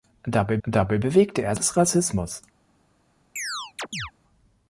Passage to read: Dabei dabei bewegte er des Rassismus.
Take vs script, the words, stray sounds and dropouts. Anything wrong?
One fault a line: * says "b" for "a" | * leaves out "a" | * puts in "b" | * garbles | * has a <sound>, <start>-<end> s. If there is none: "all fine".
* has a chirp, 3.4-4.1 s